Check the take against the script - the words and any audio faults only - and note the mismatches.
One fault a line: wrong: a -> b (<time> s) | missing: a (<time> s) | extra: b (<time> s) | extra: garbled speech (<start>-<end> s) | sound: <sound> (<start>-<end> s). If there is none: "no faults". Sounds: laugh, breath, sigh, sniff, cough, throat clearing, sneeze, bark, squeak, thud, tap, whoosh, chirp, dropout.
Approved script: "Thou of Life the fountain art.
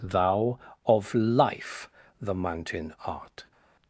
wrong: fountain -> mountain (2.3 s)